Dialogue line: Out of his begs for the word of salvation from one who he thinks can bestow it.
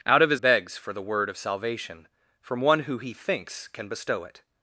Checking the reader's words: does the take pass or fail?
pass